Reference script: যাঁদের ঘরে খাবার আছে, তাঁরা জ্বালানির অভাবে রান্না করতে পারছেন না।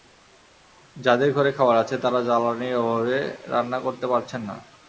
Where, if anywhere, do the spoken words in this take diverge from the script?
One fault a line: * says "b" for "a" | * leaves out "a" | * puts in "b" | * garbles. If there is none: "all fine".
all fine